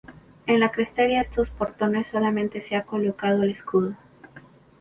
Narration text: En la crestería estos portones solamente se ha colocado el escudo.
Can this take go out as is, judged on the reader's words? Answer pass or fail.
pass